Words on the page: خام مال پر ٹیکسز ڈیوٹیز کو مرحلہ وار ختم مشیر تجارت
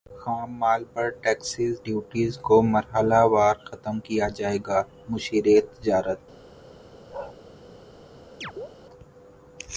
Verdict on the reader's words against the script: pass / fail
fail